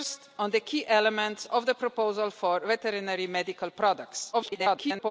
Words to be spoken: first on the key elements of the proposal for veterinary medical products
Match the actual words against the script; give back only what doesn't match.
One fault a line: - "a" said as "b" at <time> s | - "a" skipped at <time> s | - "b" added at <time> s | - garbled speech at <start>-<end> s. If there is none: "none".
- garbled speech at 4.3-5.1 s